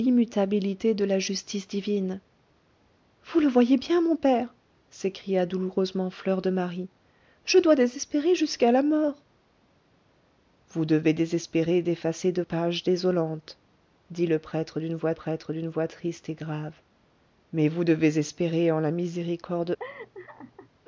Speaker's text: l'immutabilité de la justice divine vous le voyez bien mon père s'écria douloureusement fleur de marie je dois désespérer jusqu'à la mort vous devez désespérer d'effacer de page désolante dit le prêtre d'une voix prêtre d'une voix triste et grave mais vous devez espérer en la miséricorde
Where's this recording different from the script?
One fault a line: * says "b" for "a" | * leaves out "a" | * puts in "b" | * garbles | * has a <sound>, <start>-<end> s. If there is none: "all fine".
* has a laugh, 19.8-20.7 s